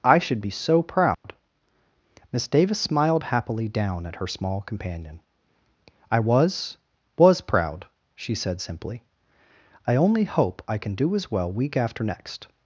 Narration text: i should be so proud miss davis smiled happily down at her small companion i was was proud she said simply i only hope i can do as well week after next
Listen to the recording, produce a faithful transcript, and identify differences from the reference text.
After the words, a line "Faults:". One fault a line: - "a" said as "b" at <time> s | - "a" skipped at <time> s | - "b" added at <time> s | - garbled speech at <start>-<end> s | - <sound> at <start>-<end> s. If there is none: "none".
i should be so proud miss davis smiled happily down at her small companion i was was proud she said simply i only hope i can do as well week after next
Faults:
- dropout at 1.1-1.2 s